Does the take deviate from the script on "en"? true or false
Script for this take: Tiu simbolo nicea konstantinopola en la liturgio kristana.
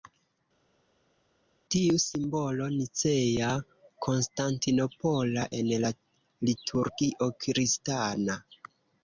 false